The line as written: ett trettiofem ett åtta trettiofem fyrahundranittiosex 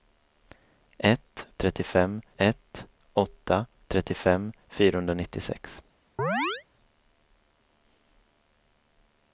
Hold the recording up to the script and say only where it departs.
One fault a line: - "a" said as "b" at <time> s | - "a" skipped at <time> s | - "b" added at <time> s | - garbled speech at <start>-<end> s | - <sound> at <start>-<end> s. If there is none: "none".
- chirp at 6.2-6.6 s